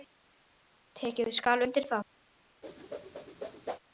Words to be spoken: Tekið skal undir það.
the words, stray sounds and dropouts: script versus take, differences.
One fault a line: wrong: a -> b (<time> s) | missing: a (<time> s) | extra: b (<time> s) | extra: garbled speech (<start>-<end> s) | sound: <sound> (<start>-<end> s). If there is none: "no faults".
sound: whoosh (2.6-3.8 s)